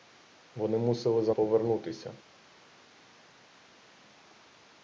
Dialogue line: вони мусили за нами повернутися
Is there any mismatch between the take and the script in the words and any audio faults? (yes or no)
yes